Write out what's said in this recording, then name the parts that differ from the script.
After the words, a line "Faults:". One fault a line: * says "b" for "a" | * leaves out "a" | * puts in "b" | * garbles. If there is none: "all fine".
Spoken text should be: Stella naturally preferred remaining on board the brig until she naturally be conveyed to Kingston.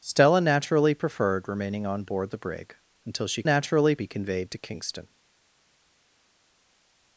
Stella naturally preferred remaining on board the brig until she naturally be conveyed to Kingston.
Faults:
all fine